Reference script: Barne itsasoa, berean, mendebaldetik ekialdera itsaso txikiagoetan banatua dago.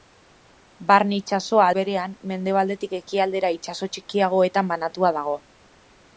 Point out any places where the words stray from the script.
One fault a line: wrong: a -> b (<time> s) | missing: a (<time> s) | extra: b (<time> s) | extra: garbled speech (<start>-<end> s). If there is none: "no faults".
no faults